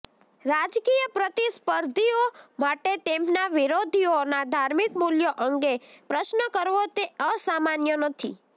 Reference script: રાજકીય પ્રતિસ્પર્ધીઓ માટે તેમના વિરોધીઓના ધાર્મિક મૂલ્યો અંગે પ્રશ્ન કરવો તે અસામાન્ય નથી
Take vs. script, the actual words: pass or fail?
pass